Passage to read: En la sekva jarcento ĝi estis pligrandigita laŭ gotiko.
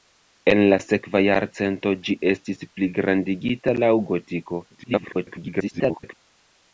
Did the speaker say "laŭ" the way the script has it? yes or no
yes